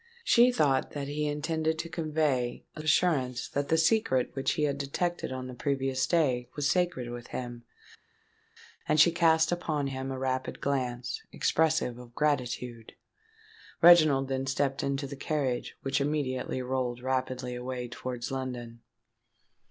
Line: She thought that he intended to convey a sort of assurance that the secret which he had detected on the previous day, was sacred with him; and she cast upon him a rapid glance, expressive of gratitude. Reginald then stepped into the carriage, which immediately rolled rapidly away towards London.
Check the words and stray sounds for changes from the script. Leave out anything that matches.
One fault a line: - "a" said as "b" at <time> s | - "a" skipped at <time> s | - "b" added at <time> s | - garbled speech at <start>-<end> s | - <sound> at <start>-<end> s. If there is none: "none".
- "sort of" skipped at 2.8 s